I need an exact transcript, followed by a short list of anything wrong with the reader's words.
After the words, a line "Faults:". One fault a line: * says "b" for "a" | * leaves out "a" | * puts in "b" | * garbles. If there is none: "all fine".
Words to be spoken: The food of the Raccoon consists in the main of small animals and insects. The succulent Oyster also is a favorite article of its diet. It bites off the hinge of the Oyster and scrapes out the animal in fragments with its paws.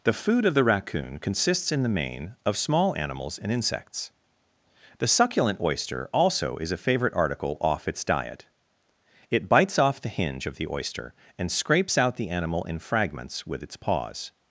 The food of the Raccoon consists in the main of small animals and insects. The succulent Oyster also is a favorite article off its diet. It bites off the hinge of the Oyster and scrapes out the animal in fragments with its paws.
Faults:
* says "off" for "of"